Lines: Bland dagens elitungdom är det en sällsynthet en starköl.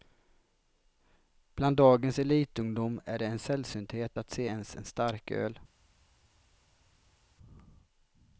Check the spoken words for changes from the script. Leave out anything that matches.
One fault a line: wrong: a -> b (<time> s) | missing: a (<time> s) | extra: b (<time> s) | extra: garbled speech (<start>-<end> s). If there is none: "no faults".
extra: att se ens (4.2 s)